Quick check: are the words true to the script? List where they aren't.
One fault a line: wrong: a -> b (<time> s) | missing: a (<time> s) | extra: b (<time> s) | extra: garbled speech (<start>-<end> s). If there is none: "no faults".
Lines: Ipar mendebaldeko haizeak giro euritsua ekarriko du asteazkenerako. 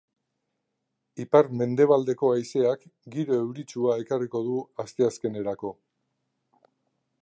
no faults